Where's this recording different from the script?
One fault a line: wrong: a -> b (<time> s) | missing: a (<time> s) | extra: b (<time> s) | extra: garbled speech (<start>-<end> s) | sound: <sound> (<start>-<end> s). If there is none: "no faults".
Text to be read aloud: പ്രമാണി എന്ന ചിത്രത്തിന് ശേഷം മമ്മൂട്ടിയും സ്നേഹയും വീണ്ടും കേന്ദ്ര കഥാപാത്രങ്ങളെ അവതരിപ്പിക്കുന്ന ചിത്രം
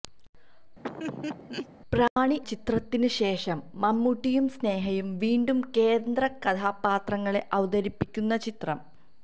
sound: laugh (0.8-1.7 s)
missing: എന്ന (2.4 s)